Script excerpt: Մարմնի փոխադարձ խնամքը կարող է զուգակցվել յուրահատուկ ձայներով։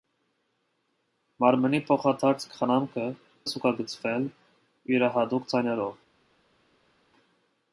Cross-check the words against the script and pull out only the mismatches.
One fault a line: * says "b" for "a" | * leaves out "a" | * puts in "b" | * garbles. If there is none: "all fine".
* leaves out "կարող"